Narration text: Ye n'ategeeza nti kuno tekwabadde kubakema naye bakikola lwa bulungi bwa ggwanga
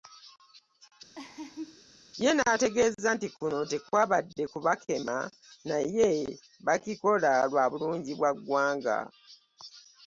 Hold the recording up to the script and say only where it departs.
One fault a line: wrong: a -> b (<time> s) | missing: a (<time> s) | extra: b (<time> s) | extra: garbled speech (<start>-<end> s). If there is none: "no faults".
no faults